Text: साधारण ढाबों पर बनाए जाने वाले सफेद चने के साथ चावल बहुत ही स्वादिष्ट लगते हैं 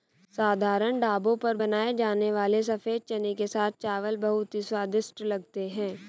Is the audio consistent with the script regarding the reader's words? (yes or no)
yes